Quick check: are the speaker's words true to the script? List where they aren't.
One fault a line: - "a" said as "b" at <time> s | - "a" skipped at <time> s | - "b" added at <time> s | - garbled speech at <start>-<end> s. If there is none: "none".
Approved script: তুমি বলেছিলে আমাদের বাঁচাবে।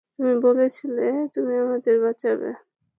- "তুমি" added at 1.3 s